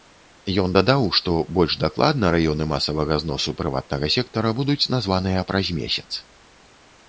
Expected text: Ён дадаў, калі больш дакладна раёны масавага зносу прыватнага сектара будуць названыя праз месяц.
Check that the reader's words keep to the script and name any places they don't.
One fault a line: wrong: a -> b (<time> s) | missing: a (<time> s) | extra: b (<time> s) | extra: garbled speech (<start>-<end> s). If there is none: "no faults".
wrong: калі -> што (1.2 s)